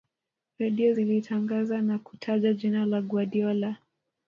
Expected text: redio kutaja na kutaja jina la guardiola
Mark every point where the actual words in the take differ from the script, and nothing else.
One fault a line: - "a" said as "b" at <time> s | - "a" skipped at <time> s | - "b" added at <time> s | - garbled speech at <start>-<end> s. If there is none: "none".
- "kutaja" said as "zilitangaza" at 0.9 s